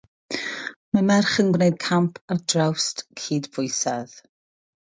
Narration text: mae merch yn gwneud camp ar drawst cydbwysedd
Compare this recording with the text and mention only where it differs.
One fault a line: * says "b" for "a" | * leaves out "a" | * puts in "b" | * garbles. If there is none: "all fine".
all fine